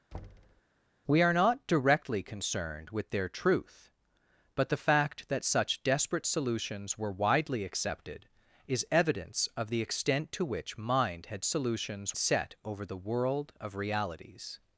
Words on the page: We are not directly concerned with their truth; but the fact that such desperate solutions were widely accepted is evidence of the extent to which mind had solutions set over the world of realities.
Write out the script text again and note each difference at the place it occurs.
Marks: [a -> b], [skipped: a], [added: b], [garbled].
We are not directly concerned with their truth; but the fact that such desperate solutions were widely accepted is evidence of the extent to which mind had solutions set over the world of realities.